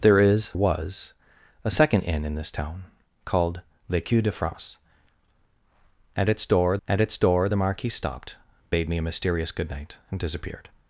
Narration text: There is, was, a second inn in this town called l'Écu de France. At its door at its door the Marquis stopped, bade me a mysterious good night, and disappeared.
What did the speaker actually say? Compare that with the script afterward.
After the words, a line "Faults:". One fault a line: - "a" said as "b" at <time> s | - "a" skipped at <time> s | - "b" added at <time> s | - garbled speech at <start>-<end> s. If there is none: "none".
There is, was, a second inn in this town called l'Écu de France. At its door at its door the Marquis stopped, bade me a mysterious good night, and disappeared.
Faults:
none